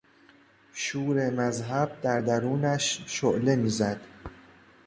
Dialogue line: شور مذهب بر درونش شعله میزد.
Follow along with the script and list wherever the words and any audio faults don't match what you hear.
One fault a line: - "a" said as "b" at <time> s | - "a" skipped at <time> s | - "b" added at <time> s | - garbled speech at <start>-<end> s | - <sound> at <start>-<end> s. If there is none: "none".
- "بر" said as "در" at 2.0 s